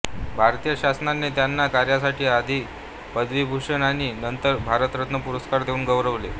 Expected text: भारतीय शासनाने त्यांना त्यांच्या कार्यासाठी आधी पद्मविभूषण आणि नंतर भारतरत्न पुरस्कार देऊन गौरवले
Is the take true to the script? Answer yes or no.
no